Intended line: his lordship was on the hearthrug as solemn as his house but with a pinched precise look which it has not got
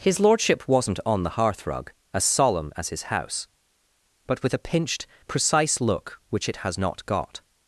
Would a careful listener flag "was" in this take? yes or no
yes